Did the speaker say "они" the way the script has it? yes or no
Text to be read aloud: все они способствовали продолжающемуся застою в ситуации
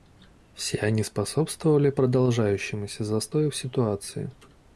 yes